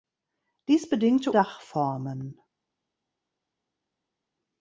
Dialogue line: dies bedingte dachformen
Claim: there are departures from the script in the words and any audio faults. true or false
false